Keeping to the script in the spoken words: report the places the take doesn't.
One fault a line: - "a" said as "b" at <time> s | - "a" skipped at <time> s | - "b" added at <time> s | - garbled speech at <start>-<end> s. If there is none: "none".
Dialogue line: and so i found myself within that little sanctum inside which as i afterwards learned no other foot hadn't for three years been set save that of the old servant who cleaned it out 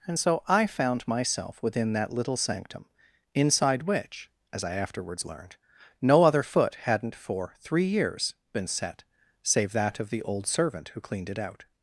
none